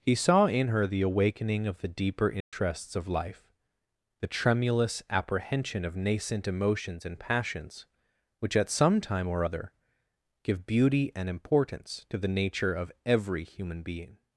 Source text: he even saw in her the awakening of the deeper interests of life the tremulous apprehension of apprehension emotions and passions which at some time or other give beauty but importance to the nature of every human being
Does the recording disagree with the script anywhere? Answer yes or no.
yes